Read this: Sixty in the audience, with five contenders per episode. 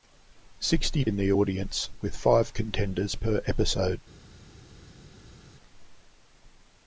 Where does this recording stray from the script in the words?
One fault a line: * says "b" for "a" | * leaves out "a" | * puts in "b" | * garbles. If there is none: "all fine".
all fine